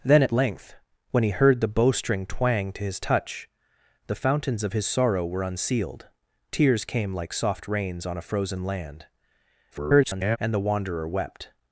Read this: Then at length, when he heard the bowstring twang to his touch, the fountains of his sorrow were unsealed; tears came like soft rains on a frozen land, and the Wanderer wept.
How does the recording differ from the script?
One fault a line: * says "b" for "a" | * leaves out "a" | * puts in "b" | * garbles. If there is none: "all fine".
* garbles